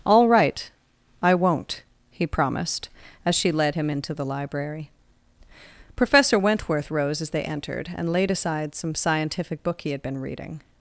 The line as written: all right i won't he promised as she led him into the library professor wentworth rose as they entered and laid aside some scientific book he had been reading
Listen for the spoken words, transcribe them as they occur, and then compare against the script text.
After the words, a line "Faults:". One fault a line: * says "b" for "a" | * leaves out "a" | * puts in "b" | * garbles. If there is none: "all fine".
all right i won't he promised as she led him into the library professor wentworth rose as they entered and laid aside some scientific book he had been reading
Faults:
all fine